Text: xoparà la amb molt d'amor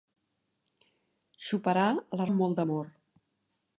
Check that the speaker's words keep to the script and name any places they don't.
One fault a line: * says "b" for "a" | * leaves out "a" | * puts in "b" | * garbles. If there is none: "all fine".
all fine